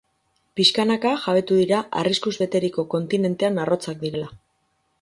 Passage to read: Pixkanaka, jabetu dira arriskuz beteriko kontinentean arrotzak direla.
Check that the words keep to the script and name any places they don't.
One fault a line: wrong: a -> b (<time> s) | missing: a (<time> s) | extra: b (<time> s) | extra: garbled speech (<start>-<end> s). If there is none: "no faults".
no faults